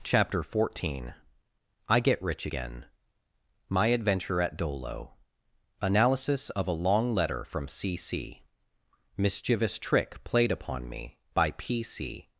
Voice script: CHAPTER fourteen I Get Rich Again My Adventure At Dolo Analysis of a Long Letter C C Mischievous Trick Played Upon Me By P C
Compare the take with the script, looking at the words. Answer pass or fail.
fail